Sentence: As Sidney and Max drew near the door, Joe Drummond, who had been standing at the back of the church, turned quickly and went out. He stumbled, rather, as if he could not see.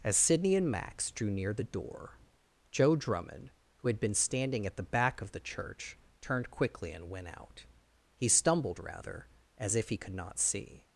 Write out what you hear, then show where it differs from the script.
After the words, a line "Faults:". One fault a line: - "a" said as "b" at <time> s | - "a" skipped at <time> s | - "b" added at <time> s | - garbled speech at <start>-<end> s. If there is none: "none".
As Sidney and Max drew near the door, Joe Drummond, who had been standing at the back of the church, turned quickly and went out. He stumbled, rather, as if he could not see.
Faults:
none